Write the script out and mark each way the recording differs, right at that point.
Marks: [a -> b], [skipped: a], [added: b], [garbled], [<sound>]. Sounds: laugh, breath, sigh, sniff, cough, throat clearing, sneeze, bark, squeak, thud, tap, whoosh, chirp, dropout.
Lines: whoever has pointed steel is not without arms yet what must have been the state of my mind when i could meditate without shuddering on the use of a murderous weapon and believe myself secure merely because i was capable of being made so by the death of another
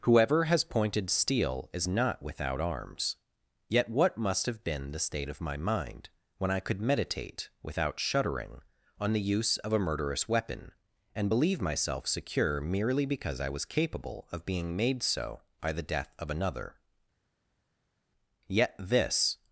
whoever has pointed steel is not without arms yet what must have been the state of my mind when i could meditate without shuddering on the use of a murderous weapon and believe myself secure merely because i was capable of being made so by the death of another [added: yet this]